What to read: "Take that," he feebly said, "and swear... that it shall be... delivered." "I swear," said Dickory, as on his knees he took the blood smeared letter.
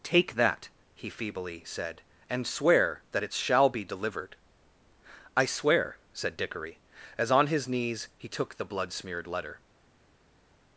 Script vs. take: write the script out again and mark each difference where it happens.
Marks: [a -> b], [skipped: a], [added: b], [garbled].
"Take that," he feebly said, "and swear... that it shall be... delivered." "I swear," said Dickory, as on his knees he took the blood smeared letter.